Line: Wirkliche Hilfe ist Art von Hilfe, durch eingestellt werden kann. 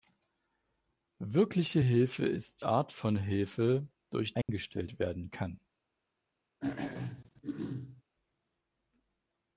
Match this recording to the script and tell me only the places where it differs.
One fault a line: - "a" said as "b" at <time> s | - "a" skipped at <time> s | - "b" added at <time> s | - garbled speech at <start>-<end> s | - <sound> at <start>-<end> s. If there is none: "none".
- dropout at 4.4-4.5 s
- throat clearing at 6.6-8.0 s